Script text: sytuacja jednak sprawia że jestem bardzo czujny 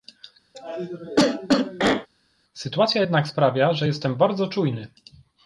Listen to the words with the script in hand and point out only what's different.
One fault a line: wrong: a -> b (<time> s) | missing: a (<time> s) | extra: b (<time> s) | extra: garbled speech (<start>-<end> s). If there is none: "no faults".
no faults